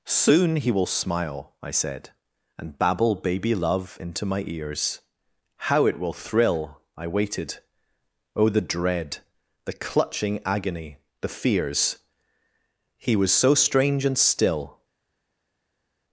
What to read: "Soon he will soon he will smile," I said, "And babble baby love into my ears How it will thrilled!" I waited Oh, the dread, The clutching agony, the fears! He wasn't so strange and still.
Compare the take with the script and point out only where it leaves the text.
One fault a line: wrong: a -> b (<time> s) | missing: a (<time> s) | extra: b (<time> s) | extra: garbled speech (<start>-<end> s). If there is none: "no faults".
missing: soon he will (0.8 s)
wrong: thrilled -> thrill (6.1 s)
wrong: wasn't -> was (13.1 s)